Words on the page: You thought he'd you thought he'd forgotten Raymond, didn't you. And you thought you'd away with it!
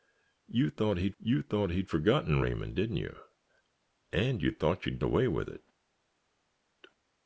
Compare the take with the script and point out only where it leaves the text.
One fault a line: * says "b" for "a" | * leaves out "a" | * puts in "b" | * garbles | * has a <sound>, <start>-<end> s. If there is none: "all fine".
all fine